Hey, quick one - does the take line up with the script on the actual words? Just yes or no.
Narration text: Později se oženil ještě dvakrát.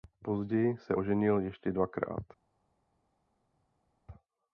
yes